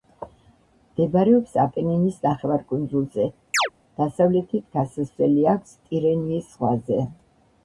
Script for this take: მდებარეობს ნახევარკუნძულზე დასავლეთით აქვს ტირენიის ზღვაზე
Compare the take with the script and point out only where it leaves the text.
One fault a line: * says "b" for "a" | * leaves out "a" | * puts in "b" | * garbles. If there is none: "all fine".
* puts in "აპენინის"
* puts in "გასასვლელი"